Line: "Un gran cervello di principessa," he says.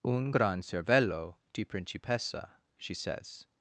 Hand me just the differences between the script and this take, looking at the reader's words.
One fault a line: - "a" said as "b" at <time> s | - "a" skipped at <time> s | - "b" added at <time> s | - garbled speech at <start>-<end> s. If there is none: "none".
- "he" said as "she" at 2.8 s